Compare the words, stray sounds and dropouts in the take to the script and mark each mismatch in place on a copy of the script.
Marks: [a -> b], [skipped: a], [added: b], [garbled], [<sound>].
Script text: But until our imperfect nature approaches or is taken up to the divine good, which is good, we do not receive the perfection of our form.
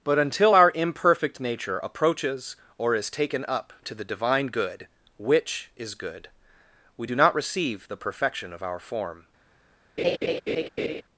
But until our imperfect nature approaches or is taken up to the divine good, which is good, we do not receive the perfection of our form. [laugh]